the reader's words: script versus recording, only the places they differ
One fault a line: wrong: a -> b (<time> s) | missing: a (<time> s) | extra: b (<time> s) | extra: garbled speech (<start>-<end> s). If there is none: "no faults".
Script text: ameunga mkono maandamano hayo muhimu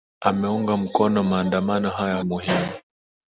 no faults